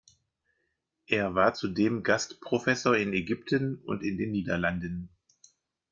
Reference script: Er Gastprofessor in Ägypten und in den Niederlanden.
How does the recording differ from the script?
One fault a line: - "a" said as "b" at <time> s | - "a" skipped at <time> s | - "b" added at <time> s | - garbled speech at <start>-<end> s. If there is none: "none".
- "war zudem" added at 1.4 s